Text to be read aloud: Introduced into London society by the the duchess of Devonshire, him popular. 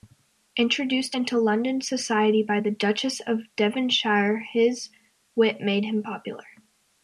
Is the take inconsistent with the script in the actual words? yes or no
yes